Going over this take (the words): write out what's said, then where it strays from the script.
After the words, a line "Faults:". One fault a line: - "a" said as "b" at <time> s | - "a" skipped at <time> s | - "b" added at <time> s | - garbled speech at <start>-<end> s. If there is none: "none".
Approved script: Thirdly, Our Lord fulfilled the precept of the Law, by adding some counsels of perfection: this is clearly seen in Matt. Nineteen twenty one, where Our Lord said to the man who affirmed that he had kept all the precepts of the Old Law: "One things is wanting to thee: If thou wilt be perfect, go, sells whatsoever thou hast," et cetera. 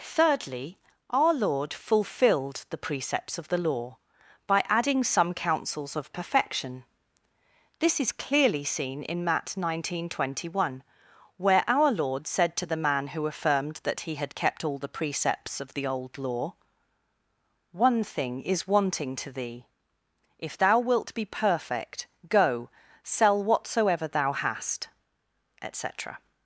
Thirdly, Our Lord fulfilled the precepts of the Law, by adding some counsels of perfection: this is clearly seen in Matt. Nineteen twenty one, where Our Lord said to the man who affirmed that he had kept all the precepts of the Old Law: "One thing is wanting to thee: If thou wilt be perfect, go, sell whatsoever thou hast," et cetera.
Faults:
- "precept" said as "precepts" at 2.8 s
- "things" said as "thing" at 18.0 s
- "sells" said as "sell" at 23.0 s